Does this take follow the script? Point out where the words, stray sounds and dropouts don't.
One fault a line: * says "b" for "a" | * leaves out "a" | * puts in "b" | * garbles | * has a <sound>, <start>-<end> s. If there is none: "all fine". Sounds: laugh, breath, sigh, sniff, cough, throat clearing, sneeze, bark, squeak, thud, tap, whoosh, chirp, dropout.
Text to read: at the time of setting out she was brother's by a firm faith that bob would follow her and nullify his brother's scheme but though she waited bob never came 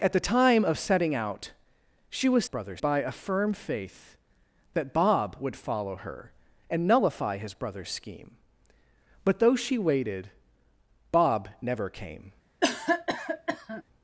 * has a cough, 12.6-13.8 s